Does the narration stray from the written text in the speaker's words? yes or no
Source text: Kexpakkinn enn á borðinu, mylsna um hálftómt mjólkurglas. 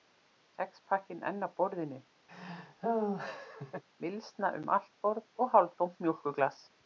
yes